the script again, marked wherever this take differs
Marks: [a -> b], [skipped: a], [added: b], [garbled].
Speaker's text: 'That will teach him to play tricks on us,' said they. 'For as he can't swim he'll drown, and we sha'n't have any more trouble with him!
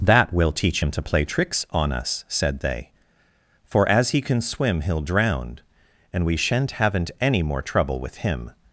'That will teach him to play tricks on us,' said they. 'For as he [can't -> can] swim he'll drown, and we sha'n't [have -> haven't] any more trouble with him!